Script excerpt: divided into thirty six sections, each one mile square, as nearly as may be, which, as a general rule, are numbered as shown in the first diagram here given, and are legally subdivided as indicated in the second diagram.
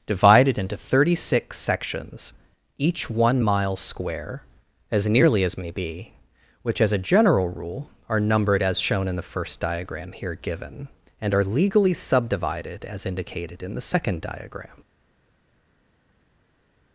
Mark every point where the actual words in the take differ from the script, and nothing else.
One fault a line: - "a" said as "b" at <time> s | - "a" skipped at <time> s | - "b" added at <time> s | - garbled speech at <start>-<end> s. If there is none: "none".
none